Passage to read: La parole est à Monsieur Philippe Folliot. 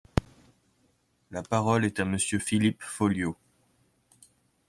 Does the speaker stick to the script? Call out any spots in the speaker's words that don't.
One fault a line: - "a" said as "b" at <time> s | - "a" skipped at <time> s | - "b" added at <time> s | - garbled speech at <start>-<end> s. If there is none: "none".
none